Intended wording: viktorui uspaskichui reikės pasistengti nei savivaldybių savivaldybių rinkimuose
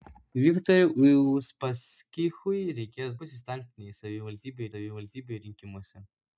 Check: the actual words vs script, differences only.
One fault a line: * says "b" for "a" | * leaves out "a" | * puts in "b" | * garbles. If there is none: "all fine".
all fine